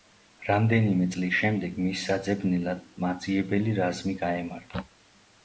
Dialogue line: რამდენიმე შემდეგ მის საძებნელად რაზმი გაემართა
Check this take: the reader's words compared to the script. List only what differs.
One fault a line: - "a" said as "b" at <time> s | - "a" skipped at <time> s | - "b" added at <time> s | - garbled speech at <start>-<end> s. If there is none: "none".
- "წლის" added at 1.1 s
- "მაძიებელი" added at 3.1 s